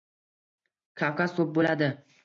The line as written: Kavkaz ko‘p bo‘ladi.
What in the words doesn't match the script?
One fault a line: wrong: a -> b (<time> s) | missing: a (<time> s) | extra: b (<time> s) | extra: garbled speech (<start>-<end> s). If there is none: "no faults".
no faults